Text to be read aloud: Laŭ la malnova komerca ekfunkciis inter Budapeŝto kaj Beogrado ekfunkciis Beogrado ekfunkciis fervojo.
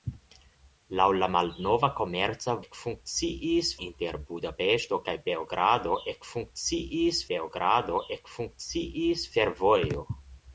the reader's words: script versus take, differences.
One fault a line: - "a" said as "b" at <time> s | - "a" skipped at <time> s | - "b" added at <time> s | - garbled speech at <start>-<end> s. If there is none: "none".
none